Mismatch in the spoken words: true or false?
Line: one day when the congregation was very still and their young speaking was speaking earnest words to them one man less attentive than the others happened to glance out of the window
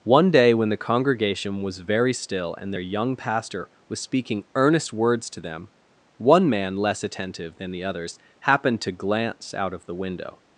true